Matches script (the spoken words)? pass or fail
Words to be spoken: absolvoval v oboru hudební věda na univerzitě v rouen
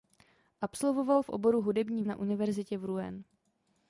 fail